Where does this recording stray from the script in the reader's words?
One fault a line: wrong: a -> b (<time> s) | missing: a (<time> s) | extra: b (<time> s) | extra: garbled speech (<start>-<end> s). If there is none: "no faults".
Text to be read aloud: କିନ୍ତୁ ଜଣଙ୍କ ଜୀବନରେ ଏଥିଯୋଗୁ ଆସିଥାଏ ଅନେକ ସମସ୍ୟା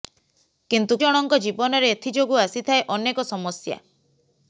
no faults